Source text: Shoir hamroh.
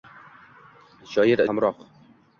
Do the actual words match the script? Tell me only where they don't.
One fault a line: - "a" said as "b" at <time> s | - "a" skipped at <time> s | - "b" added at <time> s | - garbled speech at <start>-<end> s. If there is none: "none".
none